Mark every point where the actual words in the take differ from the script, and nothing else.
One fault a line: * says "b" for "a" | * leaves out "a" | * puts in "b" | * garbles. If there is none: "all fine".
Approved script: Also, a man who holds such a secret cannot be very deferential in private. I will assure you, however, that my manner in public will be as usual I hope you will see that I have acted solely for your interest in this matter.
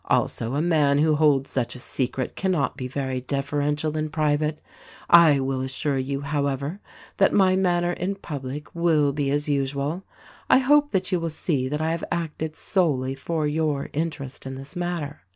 * puts in "that"